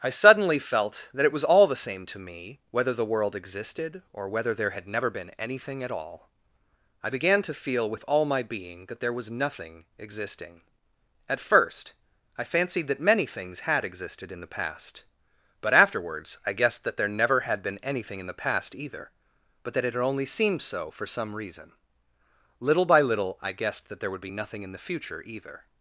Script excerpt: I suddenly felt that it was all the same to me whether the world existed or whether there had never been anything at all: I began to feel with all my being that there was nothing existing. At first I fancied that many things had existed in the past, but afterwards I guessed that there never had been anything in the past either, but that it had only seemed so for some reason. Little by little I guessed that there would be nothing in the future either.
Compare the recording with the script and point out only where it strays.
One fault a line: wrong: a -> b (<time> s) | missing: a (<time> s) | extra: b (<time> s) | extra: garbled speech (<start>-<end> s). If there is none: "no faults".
no faults